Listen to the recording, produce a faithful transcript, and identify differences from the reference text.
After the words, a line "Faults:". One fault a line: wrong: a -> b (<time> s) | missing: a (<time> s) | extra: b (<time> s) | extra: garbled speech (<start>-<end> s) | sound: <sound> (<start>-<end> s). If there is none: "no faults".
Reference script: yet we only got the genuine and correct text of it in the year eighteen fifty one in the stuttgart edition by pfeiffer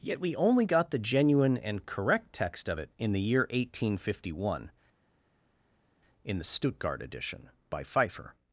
yet we only got the genuine and correct text of it in the year eighteen fifty one in the stuttgart edition by pfeiffer
Faults:
no faults